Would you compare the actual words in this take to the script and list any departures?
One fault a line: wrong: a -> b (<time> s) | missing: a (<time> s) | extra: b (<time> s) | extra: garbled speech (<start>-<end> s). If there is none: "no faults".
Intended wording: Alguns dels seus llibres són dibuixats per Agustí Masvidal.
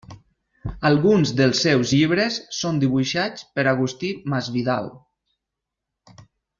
no faults